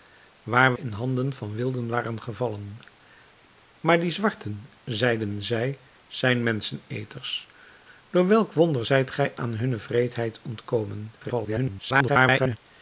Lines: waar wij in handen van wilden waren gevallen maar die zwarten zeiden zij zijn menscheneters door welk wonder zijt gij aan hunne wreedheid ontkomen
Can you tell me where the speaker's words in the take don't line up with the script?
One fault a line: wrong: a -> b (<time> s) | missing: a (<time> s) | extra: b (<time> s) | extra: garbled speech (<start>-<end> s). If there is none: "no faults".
missing: wij (0.7 s)
extra: garbled speech (11.2-12.6 s)